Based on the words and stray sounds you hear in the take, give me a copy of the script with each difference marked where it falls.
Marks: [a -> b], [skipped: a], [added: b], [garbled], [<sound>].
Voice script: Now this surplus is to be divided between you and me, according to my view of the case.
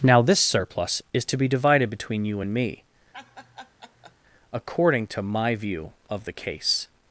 Now this surplus is to be divided between you and me, [laugh] according to my view of the case.